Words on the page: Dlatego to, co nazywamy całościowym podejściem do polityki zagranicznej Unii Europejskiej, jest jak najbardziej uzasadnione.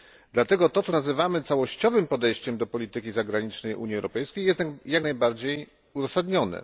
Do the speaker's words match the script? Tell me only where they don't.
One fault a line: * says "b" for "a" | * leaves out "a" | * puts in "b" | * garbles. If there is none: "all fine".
all fine